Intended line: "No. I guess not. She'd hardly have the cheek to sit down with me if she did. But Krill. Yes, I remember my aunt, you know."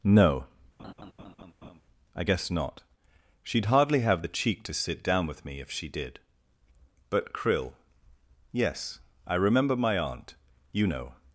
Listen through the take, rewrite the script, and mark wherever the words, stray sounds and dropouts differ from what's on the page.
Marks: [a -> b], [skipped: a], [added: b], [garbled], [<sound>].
"No. [laugh] I guess not. She'd hardly have the cheek to sit down with me if she did. But Krill. Yes, I remember my aunt, you know."